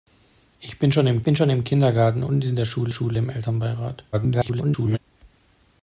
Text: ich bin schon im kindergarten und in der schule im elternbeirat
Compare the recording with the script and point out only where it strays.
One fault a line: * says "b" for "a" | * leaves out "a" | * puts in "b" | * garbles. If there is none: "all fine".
* puts in "bin schon im"
* puts in "schule"
* garbles